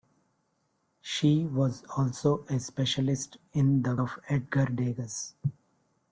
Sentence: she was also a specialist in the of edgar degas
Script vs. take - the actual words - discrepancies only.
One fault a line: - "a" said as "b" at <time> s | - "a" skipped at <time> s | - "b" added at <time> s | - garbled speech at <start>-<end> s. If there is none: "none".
none